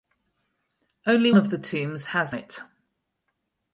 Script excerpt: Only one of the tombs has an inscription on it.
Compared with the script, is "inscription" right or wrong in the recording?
wrong